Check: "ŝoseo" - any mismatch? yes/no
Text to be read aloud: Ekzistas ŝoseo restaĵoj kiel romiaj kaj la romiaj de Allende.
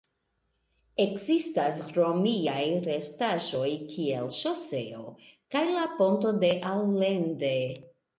yes